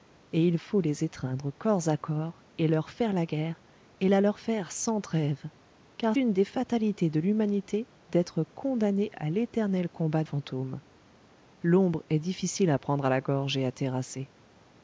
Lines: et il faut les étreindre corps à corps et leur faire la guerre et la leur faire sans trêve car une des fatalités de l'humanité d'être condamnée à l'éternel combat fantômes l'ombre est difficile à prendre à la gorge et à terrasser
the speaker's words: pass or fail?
pass